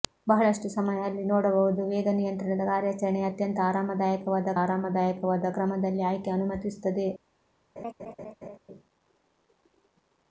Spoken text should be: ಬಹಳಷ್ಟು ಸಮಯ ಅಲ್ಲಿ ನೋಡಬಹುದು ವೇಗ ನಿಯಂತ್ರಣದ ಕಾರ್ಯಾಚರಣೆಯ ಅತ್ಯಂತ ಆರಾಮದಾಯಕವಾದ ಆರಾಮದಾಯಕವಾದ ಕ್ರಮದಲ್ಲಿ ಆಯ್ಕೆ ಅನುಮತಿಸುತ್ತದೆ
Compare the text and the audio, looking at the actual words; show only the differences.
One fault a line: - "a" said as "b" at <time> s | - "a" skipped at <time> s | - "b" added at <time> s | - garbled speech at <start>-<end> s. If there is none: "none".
none